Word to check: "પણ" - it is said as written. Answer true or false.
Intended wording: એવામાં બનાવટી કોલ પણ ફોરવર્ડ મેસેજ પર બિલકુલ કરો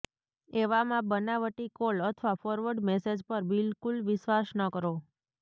false